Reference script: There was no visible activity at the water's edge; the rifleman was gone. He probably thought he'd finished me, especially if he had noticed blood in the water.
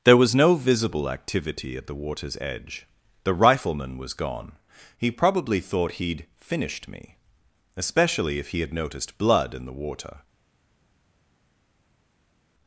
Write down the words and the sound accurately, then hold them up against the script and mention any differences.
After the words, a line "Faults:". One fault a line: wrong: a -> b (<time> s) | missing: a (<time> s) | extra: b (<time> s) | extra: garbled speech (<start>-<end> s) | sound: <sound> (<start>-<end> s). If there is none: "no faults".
There was no visible activity at the water's edge; the rifleman was gone. He probably thought he'd finished me, especially if he had noticed blood in the water.
Faults:
no faults